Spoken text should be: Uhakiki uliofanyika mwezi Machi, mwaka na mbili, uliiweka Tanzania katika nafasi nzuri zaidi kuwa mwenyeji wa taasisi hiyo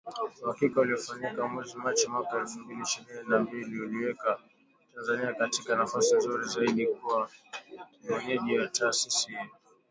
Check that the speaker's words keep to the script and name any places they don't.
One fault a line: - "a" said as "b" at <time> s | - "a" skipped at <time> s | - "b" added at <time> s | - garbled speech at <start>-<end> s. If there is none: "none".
- "elfu mbili ishirini" added at 2.4 s